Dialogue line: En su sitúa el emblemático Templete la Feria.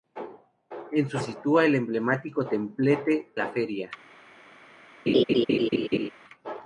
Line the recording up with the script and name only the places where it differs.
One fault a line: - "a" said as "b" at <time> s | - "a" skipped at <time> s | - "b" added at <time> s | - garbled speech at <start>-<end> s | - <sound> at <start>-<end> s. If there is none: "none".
- laugh at 5.1-6.1 s